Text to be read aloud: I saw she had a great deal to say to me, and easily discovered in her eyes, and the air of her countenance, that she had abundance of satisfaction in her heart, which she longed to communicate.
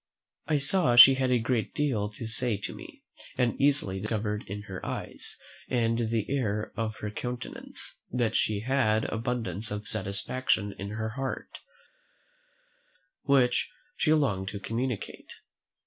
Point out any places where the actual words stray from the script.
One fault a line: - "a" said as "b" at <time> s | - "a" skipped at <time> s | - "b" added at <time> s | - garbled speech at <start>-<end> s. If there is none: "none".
none